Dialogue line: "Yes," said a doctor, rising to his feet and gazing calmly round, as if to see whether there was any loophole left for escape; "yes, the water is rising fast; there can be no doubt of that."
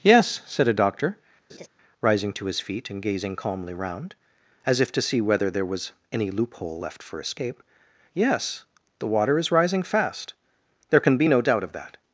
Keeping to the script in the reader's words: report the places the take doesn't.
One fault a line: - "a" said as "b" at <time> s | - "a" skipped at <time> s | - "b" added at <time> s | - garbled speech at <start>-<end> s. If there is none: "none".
none